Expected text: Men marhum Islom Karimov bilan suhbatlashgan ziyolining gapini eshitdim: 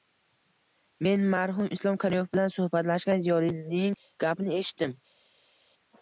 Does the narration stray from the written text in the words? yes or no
no